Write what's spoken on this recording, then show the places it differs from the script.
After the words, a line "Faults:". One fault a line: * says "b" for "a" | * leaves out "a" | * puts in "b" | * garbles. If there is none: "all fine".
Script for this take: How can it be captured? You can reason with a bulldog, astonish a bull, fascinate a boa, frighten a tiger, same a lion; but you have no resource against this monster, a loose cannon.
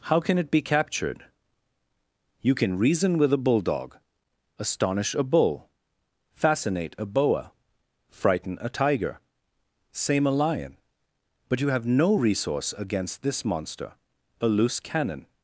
How can it be captured? You can reason with a bulldog, astonish a bull, fascinate a boa, frighten a tiger, same a lion; but you have no resource against this monster, a loose cannon.
Faults:
all fine